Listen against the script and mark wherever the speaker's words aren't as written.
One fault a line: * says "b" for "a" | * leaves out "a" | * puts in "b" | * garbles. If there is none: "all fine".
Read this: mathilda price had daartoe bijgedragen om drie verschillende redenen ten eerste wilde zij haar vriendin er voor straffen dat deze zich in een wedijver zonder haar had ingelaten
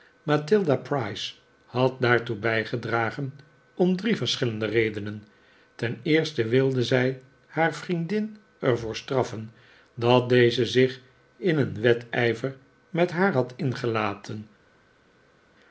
* says "met" for "zonder"